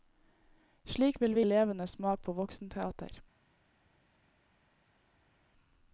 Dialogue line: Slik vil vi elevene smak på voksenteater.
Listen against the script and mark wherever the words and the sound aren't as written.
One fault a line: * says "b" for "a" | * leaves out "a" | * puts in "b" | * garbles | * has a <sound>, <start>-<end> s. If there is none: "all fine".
all fine